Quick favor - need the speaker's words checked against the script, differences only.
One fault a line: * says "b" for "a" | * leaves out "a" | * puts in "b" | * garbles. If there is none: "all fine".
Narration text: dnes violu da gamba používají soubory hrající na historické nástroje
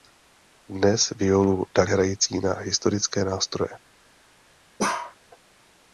* leaves out "gamba používají soubory"